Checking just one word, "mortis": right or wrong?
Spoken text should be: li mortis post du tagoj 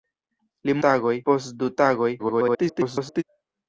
wrong